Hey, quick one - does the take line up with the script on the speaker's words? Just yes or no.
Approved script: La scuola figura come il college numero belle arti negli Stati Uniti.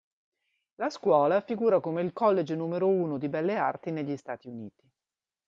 no